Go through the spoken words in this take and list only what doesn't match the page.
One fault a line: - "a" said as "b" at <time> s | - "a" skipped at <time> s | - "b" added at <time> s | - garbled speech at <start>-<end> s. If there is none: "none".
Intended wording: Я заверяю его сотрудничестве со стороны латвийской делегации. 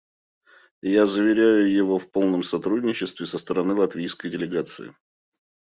- "в полном" added at 2.0 s